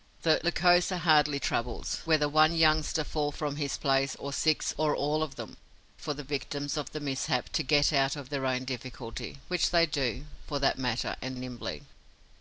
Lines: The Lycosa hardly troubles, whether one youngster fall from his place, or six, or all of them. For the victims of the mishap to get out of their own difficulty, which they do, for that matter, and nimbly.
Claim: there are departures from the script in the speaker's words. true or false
false